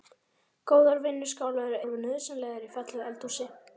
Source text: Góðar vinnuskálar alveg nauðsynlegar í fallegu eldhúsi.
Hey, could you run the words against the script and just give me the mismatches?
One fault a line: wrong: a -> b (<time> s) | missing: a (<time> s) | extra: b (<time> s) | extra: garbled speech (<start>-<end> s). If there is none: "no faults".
no faults